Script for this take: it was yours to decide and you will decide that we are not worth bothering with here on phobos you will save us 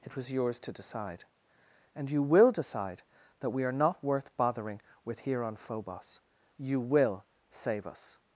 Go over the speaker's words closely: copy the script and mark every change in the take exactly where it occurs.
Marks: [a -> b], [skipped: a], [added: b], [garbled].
it was yours to decide and you will decide that we are not worth bothering with here on phobos you will save us